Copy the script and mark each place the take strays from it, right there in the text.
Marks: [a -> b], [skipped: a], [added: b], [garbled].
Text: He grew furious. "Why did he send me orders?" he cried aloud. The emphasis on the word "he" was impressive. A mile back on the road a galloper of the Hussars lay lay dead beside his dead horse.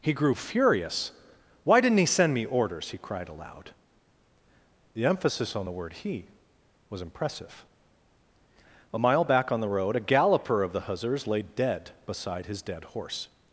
He grew furious. "Why [did -> didn't] he send me orders?" he cried aloud. The emphasis on the word "he" was impressive. A mile back on the road a galloper of the Hussars lay [skipped: lay] dead beside his dead horse.